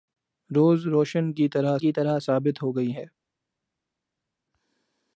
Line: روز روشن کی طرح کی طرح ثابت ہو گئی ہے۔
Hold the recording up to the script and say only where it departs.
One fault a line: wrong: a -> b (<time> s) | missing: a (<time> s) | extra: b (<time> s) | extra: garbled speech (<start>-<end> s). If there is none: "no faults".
no faults